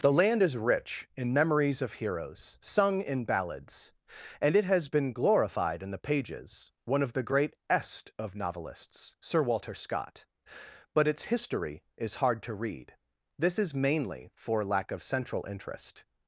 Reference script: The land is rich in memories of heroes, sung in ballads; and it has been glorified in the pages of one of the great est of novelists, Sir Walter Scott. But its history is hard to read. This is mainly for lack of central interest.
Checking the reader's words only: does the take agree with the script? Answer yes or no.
no